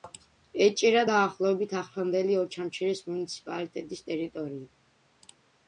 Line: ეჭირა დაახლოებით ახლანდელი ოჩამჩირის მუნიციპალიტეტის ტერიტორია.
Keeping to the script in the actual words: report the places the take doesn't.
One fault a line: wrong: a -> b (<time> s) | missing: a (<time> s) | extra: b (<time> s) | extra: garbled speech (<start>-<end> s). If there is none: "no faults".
no faults